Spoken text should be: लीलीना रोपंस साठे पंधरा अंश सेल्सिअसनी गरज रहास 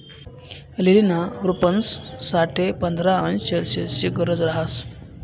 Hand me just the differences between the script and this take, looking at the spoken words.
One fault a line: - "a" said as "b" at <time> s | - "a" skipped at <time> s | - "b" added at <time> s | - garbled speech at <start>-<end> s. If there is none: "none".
none